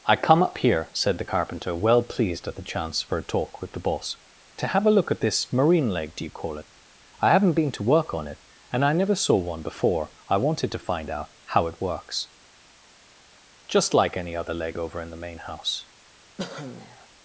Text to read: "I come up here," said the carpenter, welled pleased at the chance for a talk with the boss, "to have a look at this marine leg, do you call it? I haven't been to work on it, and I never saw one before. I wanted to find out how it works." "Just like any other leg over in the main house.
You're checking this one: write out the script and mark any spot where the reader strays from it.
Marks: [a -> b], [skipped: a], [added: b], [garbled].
"I come up here," said the carpenter, [welled -> well] pleased at the chance for a talk with the boss, "to have a look at this marine leg, do you call it? I haven't been to work on it, and I never saw one before. I wanted to find out how it works." "Just like any other leg over in the main house.